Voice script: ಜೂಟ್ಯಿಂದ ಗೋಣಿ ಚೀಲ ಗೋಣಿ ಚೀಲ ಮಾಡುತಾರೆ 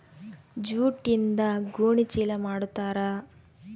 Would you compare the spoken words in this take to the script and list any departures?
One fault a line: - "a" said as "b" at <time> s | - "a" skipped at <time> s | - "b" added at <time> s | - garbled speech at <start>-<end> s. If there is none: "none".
- "ಗೋಣಿ ಚೀಲ" skipped at 2.3 s